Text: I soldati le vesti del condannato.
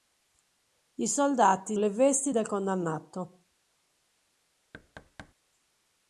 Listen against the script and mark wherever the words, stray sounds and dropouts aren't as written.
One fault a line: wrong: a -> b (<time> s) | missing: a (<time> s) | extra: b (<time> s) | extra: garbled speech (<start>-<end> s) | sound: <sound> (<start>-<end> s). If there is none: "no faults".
sound: thud (4.7-5.3 s)